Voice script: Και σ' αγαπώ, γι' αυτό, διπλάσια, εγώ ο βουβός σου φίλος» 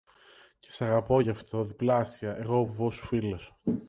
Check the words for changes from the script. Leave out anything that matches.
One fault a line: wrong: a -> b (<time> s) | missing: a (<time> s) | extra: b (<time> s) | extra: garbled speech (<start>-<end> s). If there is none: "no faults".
no faults